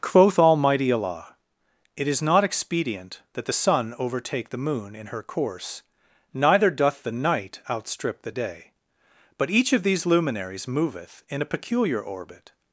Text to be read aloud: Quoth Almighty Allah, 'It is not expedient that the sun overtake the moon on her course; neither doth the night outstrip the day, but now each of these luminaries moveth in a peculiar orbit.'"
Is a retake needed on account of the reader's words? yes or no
yes